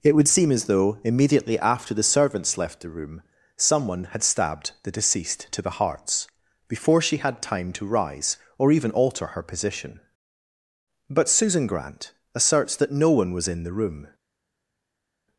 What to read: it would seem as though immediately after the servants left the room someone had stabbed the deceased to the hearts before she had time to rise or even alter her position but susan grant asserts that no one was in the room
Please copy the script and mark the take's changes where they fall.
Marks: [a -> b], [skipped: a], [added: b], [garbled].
it would seem as though immediately after the servants left the room someone had stabbed the deceased to the hearts before she had time to rise or even alter her position but susan grant asserts that no one was in the room